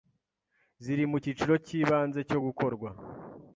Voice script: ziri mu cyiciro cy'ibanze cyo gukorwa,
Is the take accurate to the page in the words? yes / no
yes